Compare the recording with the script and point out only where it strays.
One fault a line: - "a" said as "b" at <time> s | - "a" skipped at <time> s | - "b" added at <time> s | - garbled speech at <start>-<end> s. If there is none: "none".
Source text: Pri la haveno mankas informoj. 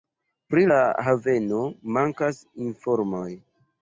none